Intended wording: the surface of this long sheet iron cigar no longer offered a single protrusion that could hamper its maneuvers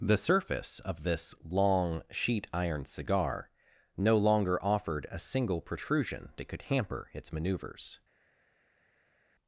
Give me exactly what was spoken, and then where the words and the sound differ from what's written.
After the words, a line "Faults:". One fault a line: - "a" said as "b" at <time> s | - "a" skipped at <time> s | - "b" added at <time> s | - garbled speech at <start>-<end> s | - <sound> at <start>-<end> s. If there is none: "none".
the surface of this long sheet iron cigar no longer offered a single protrusion that could hamper its maneuvers
Faults:
none